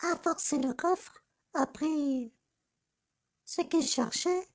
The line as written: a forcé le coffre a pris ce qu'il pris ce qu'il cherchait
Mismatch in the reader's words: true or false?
true